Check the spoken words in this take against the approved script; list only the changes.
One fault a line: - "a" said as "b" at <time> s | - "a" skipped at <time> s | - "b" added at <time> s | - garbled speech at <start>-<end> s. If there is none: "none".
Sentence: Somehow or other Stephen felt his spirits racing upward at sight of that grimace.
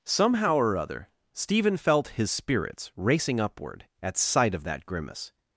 none